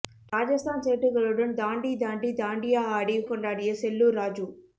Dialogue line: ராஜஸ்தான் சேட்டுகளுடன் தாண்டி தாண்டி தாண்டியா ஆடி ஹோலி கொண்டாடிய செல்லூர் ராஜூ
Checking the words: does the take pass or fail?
fail